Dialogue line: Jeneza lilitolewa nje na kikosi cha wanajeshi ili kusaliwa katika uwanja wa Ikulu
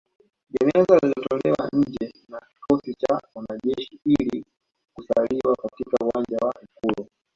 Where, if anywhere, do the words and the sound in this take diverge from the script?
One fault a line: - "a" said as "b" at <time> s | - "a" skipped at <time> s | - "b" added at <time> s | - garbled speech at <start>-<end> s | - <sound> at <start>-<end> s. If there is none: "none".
none